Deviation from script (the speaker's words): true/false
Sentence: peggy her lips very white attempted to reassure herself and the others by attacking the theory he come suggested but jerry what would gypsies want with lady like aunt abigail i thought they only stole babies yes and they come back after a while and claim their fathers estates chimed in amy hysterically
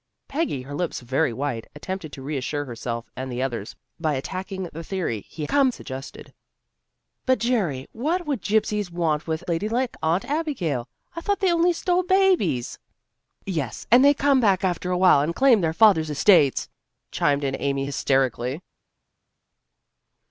false